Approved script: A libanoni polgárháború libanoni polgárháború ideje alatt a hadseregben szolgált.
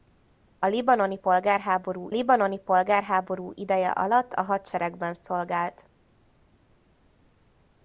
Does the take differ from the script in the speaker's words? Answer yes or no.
no